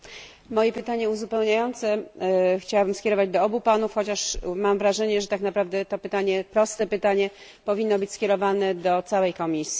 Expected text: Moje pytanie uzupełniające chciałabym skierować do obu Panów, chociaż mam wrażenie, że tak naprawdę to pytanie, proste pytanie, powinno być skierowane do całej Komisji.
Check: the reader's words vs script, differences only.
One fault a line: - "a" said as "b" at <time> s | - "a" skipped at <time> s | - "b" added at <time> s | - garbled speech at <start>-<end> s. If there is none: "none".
none